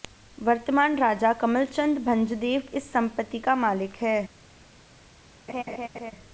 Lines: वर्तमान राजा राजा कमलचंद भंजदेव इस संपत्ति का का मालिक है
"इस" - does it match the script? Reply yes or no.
yes